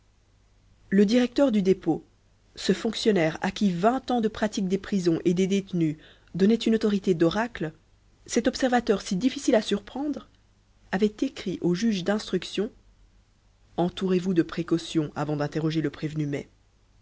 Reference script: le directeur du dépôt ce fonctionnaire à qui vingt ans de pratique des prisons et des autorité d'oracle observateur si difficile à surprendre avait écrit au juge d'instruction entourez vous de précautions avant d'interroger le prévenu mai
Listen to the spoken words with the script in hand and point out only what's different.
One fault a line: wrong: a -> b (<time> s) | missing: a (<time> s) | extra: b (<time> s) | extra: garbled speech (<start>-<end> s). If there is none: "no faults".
extra: détenus donnaient une (5.5 s)
extra: cet (8.3 s)